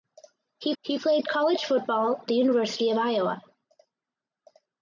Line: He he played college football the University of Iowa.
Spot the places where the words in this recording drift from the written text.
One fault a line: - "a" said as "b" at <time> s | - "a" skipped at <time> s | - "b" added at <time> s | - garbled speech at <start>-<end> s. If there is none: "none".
none